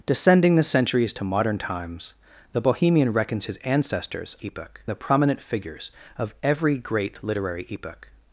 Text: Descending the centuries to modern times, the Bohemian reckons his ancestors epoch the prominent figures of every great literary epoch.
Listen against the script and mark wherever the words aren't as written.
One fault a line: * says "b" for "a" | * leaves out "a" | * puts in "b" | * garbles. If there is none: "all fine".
all fine